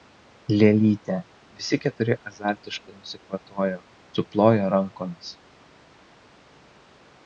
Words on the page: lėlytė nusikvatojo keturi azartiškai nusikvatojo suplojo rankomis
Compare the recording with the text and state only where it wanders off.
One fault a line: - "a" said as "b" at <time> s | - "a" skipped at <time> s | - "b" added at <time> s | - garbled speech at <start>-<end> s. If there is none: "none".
- "nusikvatojo" said as "visi" at 1.6 s